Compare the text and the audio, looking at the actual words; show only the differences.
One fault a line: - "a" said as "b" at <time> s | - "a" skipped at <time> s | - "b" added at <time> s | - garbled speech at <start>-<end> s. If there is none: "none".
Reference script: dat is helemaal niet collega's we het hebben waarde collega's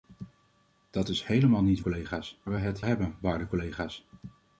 none